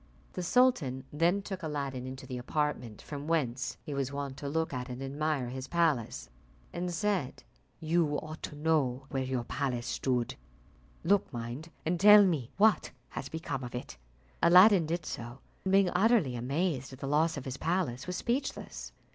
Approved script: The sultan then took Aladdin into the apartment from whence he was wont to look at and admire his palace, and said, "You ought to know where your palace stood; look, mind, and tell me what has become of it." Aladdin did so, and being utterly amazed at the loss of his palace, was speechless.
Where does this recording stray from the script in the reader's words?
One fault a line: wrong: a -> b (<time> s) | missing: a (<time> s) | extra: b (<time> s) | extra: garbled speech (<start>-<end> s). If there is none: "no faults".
no faults